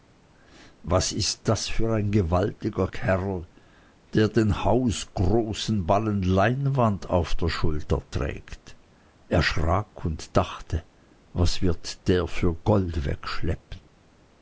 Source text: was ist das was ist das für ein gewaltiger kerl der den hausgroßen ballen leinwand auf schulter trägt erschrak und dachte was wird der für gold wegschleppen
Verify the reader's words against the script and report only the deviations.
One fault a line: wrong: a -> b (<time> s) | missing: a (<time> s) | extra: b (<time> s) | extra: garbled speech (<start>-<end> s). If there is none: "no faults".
missing: was ist das (1.7 s)
extra: der (7.3 s)